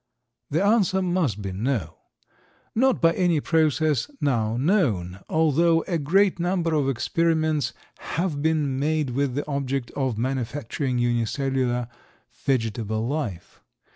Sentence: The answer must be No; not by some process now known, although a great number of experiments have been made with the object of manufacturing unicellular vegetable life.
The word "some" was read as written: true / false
false